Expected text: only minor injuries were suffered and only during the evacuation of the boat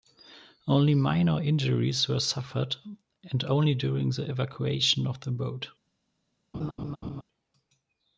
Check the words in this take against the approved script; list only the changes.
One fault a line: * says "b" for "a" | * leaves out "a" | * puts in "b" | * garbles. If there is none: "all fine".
all fine